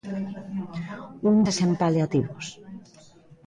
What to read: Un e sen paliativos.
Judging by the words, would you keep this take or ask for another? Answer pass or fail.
pass